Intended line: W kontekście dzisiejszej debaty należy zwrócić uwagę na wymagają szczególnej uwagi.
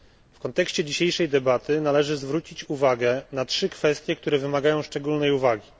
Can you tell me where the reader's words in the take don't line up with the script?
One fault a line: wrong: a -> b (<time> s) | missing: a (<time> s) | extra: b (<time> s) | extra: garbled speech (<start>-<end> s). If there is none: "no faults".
extra: trzy kwestie które (3.5 s)